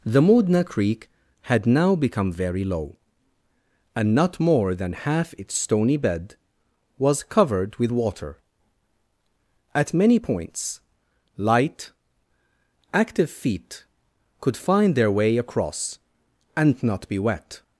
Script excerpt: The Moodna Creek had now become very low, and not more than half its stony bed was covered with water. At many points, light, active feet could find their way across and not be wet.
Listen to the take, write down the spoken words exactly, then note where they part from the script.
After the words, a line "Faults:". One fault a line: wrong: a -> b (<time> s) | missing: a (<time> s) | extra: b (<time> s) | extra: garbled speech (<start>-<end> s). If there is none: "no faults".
The Moodna Creek had now become very low, and not more than half its stony bed was covered with water. At many points, light, active feet could find their way across and not be wet.
Faults:
no faults